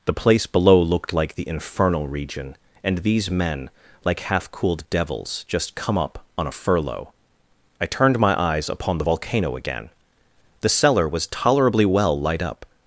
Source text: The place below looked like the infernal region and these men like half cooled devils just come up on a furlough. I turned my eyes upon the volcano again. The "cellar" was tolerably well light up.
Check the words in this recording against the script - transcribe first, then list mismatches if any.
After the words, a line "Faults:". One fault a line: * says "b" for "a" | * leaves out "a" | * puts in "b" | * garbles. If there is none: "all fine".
The place below looked like the infernal region and these men like half cooled devils just come up on a furlough. I turned my eyes upon the volcano again. The "cellar" was tolerably well light up.
Faults:
all fine